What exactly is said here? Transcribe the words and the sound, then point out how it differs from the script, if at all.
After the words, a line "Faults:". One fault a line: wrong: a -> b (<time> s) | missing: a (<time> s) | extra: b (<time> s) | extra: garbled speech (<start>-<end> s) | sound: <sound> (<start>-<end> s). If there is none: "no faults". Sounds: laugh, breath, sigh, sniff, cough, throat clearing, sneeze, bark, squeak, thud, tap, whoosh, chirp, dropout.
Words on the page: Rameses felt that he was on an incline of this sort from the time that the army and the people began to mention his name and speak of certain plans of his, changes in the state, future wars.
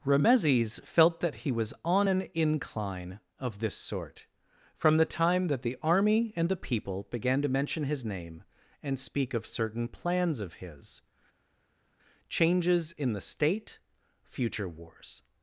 Rameses felt that he was on an incline of this sort from the time that the army and the people began to mention his name and speak of certain plans of his, changes in the state, future wars.
Faults:
no faults